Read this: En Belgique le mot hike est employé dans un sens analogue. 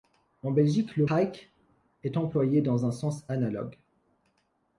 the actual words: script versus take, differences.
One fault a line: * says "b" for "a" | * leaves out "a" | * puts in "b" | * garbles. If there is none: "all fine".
* leaves out "mot"